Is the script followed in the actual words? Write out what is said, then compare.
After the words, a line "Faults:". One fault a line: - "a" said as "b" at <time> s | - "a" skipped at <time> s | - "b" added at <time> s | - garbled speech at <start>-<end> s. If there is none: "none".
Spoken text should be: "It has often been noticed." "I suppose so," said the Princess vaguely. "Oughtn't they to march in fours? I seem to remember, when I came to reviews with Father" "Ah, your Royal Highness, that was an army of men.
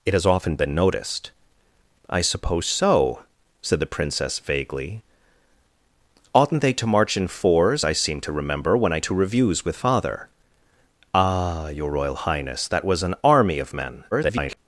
"It has often been noticed." "I suppose so," said the Princess vaguely. "Oughtn't they to march in fours? I seem to remember, when I to reviews with Father" "Ah, your Royal Highness, that was an army of men. [garbled]
Faults:
- "came" skipped at 9.0 s
- garbled speech at 14.1-14.6 s